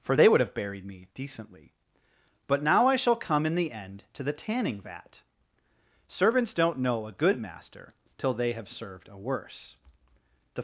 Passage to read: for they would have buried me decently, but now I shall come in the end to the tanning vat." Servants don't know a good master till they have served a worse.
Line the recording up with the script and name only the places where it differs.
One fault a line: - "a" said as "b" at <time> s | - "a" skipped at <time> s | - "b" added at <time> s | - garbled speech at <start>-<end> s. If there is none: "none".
- "THE" added at 10.5 s